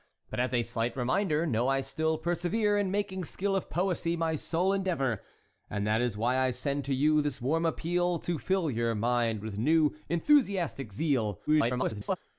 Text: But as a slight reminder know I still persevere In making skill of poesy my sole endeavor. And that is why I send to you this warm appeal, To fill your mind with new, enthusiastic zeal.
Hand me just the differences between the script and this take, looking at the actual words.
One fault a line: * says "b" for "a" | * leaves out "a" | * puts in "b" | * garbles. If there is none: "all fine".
* garbles